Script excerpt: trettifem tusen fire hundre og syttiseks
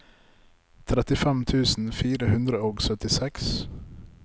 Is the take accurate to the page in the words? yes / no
yes